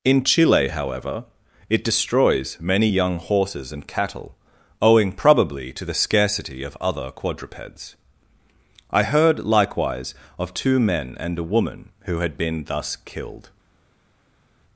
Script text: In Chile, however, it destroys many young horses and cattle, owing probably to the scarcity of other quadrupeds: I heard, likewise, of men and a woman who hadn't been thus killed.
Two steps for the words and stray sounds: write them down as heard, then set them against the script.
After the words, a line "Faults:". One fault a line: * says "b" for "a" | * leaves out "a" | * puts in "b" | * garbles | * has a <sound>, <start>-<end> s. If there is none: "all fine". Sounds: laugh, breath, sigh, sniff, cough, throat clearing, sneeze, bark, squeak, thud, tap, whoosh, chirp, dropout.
In Chile, however, it destroys many young horses and cattle, owing probably to the scarcity of other quadrupeds: I heard, likewise, of two men and a woman who had been thus killed.
Faults:
* puts in "two"
* says "had" for "hadn't"